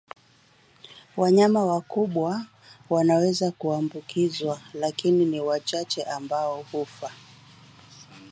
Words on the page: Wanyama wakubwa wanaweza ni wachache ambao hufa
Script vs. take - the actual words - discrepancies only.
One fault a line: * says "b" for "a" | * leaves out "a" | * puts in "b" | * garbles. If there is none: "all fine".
* puts in "kuambukizwa lakini"